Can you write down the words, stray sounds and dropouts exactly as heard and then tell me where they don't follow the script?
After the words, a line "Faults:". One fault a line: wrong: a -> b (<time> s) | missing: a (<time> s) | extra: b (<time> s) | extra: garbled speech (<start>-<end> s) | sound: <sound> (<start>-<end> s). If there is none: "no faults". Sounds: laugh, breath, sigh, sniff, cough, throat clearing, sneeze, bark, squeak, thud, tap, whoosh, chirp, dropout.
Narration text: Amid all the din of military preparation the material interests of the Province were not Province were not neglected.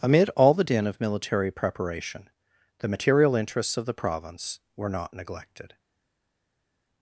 Amid all the din of military preparation the material interests of the Province were not neglected.
Faults:
missing: Province were not (5.1 s)